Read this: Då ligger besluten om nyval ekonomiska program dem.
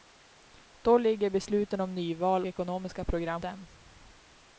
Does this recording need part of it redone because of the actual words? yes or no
no